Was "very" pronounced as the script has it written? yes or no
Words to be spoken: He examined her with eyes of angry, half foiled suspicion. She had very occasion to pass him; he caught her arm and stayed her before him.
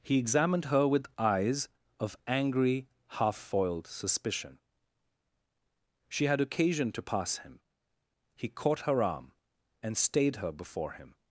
no